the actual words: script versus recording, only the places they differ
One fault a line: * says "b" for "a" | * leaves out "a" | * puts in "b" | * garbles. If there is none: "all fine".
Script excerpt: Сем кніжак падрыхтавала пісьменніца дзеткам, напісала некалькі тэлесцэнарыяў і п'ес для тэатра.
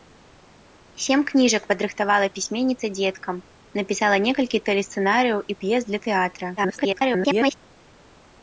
* garbles